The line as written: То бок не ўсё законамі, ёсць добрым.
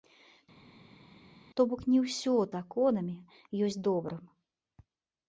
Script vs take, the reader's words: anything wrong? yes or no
no